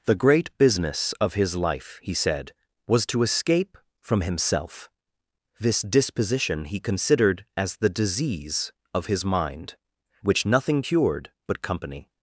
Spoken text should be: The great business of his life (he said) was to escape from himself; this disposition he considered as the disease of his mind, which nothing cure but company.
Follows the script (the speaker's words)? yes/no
no